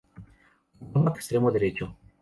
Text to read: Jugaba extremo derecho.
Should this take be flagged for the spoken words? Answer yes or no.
no